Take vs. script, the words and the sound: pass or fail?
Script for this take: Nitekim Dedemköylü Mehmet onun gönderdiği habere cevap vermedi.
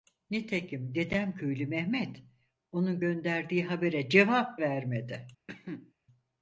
fail